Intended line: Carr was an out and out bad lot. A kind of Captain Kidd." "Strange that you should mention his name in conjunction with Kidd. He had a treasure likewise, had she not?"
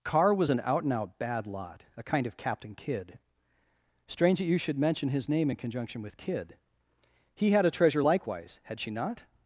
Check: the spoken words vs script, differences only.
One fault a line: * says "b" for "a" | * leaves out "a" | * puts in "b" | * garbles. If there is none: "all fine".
all fine